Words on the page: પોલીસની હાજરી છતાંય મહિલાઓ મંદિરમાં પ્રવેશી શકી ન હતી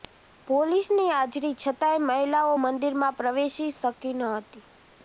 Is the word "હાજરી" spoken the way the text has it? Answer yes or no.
yes